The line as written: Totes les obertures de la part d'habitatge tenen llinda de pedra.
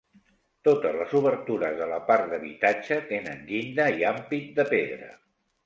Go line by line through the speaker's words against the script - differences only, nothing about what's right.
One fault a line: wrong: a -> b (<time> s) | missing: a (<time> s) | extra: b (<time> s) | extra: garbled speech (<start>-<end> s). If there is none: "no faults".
extra: i ampit (4.0 s)